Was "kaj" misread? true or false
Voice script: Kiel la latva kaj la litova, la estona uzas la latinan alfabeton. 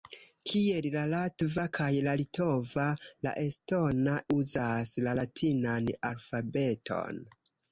false